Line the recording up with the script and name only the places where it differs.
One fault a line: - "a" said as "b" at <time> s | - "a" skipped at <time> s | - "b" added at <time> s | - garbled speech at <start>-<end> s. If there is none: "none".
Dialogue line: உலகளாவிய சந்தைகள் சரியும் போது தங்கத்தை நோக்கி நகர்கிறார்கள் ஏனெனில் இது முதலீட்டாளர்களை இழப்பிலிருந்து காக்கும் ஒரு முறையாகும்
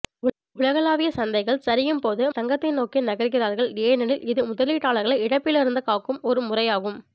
none